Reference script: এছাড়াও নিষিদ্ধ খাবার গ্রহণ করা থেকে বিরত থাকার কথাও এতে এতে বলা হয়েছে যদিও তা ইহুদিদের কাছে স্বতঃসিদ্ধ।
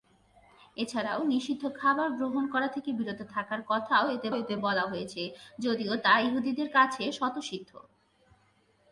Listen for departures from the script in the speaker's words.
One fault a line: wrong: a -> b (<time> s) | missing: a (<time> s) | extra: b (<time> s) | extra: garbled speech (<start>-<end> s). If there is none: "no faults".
no faults